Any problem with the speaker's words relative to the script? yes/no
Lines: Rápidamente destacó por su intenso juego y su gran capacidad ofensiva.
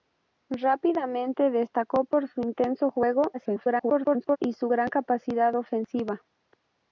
yes